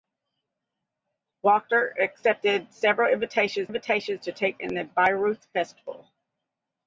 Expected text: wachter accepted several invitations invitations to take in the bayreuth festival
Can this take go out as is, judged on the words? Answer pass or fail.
pass